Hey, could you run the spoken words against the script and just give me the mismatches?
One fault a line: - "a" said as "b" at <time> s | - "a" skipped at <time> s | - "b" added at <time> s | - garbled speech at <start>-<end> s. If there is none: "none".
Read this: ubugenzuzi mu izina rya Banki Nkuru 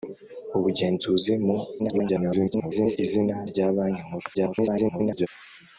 - garbled speech at 1.8-3.0 s
- garbled speech at 4.3-5.3 s